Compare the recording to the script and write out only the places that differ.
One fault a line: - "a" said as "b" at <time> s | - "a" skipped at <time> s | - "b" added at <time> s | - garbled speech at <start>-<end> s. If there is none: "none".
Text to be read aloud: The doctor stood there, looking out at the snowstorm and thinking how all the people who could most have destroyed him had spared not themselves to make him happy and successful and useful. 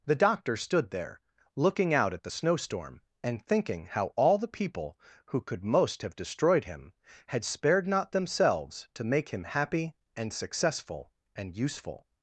none